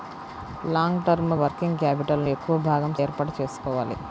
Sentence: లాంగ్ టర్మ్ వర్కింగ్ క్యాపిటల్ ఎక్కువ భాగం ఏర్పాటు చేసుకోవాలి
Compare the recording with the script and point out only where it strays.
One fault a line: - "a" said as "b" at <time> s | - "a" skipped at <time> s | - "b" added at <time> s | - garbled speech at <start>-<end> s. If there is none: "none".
none